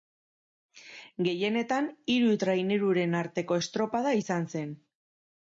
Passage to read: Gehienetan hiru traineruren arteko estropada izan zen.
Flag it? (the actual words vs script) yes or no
no